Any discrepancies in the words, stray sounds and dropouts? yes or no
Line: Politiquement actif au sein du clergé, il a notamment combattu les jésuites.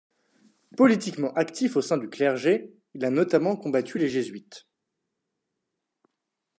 no